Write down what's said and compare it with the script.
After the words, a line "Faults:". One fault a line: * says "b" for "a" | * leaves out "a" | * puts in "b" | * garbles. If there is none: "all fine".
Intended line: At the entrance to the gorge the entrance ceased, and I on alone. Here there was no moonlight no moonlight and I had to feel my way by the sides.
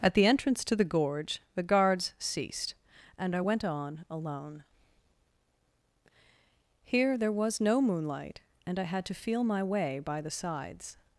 At the entrance to the gorge the guards ceased, and I went on alone. Here there was no moonlight and I had to feel my way by the sides.
Faults:
* says "guards" for "entrance"
* puts in "went"
* leaves out "no moonlight"